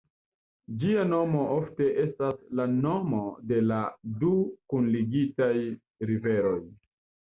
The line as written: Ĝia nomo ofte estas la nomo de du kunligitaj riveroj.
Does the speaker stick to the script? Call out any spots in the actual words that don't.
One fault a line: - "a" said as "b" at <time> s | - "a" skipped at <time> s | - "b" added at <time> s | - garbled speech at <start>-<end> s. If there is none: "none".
- "la" added at 3.7 s